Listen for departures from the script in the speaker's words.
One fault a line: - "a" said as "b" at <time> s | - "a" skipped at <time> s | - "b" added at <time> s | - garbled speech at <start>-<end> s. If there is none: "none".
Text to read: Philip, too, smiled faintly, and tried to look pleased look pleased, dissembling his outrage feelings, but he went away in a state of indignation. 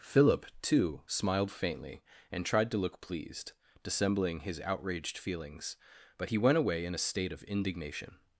- "look pleased" skipped at 3.5 s
- "outrage" said as "outraged" at 4.6 s